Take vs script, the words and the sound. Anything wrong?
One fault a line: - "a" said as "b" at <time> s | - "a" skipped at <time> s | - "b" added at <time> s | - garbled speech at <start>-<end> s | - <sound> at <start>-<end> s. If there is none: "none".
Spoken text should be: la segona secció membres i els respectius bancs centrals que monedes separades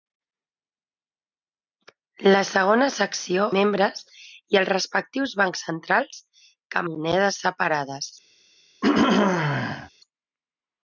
- throat clearing at 8.8-9.9 s